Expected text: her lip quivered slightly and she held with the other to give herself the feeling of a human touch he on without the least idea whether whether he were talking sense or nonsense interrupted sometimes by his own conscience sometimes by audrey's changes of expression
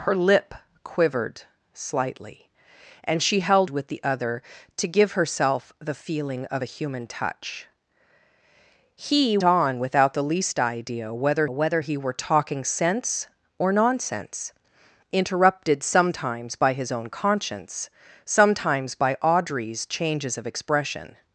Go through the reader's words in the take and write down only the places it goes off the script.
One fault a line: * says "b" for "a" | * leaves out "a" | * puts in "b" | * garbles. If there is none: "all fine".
all fine